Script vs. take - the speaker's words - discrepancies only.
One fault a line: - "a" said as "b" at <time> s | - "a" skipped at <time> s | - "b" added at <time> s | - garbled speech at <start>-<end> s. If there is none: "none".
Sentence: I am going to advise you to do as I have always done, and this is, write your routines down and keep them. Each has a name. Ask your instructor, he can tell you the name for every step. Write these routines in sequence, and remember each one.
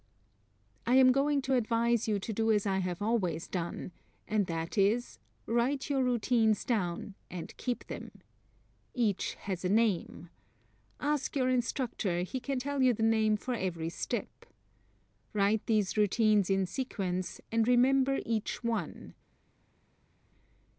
- "this" said as "that" at 4.5 s